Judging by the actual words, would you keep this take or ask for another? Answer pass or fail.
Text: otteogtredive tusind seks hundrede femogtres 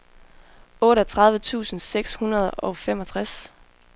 fail